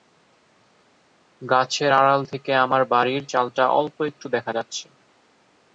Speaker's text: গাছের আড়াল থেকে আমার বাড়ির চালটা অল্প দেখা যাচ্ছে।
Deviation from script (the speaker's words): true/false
true